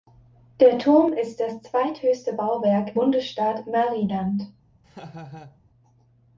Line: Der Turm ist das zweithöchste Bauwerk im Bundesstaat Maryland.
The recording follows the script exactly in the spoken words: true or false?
false